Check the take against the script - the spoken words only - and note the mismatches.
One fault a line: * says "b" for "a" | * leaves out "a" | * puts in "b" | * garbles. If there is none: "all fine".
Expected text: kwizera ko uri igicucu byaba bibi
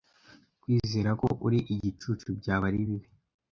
* puts in "ari"